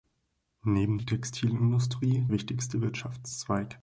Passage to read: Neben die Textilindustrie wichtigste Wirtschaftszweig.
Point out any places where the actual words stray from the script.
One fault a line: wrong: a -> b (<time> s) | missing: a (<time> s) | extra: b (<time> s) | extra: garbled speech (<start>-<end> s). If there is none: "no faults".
no faults